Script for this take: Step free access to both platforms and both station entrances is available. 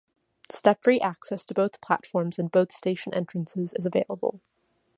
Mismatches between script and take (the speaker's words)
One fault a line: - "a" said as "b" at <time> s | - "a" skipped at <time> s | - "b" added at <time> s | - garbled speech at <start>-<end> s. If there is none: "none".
none